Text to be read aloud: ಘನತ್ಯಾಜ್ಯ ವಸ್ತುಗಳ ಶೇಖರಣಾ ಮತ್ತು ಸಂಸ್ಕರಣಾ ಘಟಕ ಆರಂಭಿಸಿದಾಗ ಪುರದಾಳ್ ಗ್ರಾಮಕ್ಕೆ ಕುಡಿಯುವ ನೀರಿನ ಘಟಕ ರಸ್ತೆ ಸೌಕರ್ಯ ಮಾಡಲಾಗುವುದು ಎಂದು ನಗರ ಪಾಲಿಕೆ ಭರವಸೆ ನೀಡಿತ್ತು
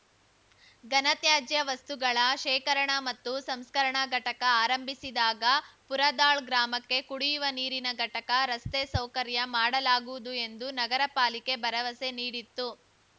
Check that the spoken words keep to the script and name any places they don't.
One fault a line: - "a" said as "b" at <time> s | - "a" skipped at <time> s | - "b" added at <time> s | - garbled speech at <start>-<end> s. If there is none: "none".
none